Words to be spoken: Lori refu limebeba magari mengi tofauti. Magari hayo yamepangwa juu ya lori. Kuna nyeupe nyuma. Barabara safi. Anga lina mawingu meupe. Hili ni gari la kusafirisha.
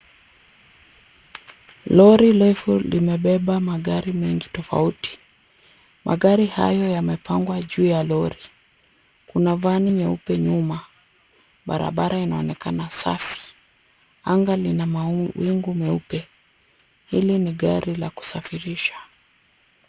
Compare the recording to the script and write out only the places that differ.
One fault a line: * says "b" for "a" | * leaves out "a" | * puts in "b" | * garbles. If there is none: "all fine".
* puts in "vani"
* puts in "inaonekana"